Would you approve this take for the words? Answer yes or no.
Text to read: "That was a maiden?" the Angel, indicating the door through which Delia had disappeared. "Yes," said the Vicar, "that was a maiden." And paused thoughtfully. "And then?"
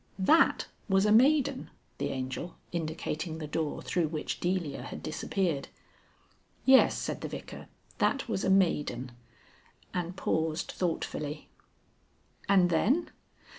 yes